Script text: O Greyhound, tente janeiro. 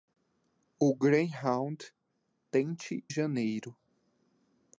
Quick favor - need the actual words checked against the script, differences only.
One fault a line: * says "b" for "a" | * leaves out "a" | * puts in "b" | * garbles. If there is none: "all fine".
all fine